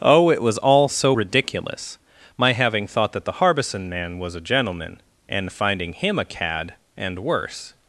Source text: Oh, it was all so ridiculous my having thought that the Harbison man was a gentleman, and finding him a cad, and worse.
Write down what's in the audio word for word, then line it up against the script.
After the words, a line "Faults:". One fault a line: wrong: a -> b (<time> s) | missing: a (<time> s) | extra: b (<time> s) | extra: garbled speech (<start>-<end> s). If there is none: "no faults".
Oh, it was all so ridiculous my having thought that the Harbison man was a gentleman, and finding him a cad, and worse.
Faults:
no faults